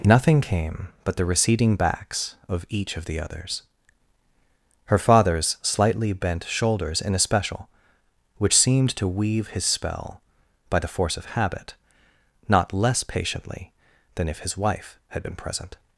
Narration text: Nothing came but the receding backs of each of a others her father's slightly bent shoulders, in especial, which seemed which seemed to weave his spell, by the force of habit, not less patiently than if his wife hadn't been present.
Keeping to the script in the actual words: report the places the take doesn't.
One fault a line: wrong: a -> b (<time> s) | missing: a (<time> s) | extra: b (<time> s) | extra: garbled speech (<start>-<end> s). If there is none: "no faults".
wrong: a -> the (3.0 s)
missing: which seemed (8.9 s)
wrong: hadn't -> had (15.1 s)